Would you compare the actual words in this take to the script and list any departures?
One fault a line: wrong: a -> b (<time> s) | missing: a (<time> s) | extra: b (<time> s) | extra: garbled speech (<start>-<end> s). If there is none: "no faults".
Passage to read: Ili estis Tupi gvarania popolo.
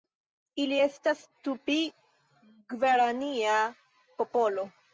wrong: estis -> estas (0.8 s)